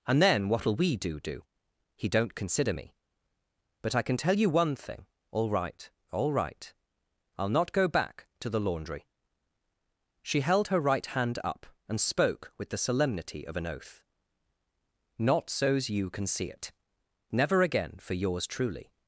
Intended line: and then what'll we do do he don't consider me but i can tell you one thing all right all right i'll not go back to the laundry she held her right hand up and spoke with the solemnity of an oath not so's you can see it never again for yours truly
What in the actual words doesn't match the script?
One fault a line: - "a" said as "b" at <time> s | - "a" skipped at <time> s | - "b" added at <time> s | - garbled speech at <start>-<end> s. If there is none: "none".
none